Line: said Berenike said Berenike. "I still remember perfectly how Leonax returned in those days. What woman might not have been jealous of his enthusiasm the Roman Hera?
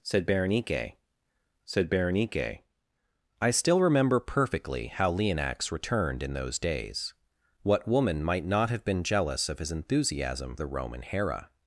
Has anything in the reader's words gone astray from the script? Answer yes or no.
no